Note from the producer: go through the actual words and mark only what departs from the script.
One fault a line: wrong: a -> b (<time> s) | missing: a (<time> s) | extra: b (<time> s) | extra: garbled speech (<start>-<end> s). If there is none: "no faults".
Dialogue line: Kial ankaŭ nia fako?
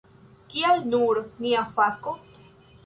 wrong: ankaŭ -> nur (0.9 s)